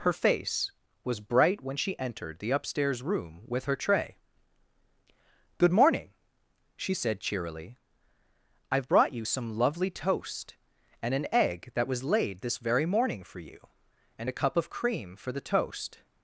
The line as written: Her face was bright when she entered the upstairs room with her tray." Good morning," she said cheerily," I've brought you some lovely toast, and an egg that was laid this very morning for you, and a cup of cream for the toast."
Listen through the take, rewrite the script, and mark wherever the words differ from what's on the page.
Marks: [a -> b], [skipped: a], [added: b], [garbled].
Her face was bright when she entered the upstairs room with her tray." Good morning," she said cheerily," I've brought you some lovely toast, and an egg that was laid this very morning for you, and a cup of cream for the toast."